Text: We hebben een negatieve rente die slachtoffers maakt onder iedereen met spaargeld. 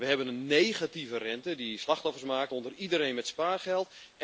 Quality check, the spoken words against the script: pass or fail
pass